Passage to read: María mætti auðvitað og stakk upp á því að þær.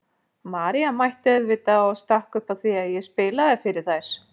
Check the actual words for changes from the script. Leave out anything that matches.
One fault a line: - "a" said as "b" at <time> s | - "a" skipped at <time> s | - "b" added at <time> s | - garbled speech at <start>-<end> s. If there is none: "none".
- "ég spilaði fyrir" added at 3.0 s